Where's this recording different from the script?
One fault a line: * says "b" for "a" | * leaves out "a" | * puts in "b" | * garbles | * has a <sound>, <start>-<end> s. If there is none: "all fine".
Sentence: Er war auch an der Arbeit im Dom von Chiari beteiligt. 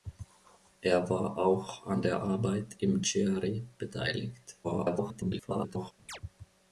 * leaves out "Dom von"
* garbles
* has a chirp, 6.1-6.2 s